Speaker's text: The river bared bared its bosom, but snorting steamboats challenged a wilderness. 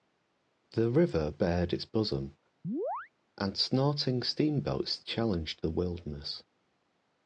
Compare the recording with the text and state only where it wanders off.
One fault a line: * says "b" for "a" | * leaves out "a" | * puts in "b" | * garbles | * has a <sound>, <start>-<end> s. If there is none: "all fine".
* leaves out "bared"
* has a chirp, 2.6-3.1 s
* says "and" for "but"
* says "the" for "a"